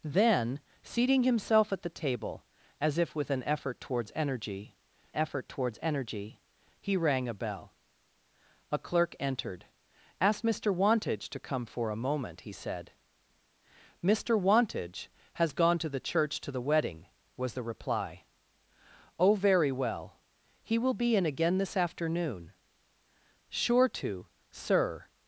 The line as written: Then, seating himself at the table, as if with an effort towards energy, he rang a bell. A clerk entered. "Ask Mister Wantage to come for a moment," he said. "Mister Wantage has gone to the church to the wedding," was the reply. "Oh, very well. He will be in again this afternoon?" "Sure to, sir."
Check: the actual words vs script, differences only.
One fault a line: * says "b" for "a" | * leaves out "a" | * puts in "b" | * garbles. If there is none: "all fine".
* puts in "effort towards energy"